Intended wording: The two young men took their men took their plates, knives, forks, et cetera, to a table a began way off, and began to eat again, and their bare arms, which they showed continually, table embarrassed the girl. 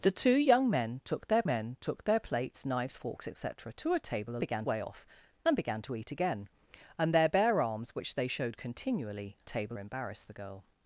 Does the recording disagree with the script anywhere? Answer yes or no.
no